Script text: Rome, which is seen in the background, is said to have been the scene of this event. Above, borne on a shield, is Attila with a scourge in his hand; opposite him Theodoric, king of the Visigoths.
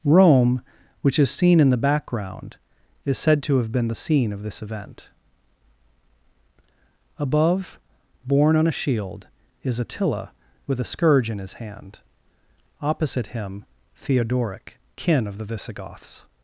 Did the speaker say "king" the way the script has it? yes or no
no